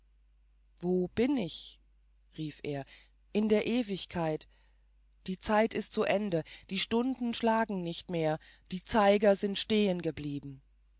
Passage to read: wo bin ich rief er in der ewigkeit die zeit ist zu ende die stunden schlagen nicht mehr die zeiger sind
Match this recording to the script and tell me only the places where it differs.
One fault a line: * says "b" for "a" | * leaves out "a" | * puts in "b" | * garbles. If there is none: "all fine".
all fine